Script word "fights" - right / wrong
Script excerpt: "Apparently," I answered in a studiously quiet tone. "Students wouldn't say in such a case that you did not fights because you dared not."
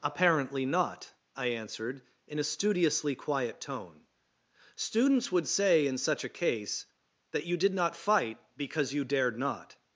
wrong